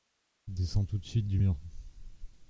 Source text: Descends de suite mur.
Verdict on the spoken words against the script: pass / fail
fail